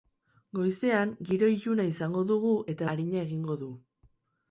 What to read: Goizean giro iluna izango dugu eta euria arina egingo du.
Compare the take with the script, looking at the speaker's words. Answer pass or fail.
fail